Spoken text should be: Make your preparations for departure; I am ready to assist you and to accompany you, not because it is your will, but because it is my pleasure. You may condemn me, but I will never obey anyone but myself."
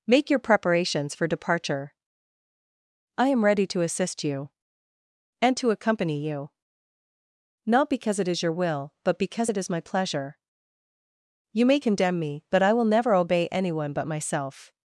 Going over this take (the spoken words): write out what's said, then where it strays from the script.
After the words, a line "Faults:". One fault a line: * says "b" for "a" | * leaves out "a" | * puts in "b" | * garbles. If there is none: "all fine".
Make your preparations for departure; I am ready to assist you and to accompany you, not because it is your will, but because it is my pleasure. You may condemn me, but I will never obey anyone but myself."
Faults:
all fine